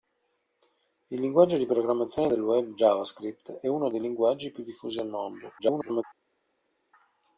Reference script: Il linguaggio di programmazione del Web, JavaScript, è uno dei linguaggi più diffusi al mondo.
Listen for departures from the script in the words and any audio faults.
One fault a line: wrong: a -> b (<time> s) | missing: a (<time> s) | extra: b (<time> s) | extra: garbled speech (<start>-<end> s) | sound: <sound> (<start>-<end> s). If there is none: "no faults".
extra: garbled speech (5.6-6.0 s)